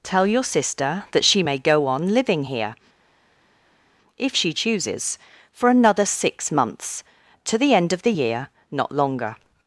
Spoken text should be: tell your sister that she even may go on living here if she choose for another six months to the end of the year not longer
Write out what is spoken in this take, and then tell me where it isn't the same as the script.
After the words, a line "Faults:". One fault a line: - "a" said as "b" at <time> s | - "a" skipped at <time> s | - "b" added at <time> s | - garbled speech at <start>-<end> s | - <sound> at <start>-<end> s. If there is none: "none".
tell your sister that she may go on living here if she chooses for another six months to the end of the year not longer
Faults:
- "even" skipped at 1.4 s
- "choose" said as "chooses" at 4.5 s